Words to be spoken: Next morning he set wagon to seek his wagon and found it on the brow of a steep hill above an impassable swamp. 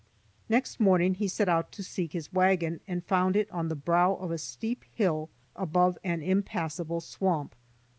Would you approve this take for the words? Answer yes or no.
no